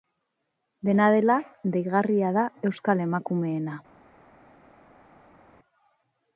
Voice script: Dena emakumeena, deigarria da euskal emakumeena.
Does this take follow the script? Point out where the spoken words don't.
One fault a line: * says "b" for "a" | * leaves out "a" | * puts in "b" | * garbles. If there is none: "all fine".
* says "dela" for "emakumeena"